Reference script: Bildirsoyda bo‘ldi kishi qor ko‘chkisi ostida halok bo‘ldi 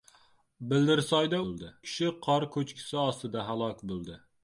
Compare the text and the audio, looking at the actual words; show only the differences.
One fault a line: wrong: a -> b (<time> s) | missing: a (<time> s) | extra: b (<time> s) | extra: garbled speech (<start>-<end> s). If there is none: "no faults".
no faults